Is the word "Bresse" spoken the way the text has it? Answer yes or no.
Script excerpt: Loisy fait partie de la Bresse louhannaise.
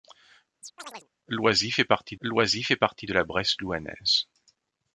yes